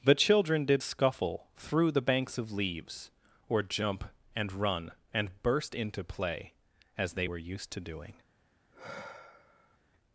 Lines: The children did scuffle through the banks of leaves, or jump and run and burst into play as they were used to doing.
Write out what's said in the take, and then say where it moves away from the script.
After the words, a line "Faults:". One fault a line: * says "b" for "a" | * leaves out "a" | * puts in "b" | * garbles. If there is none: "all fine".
The children did scuffle through the banks of leaves, or jump and run and burst into play as they were used to doing.
Faults:
all fine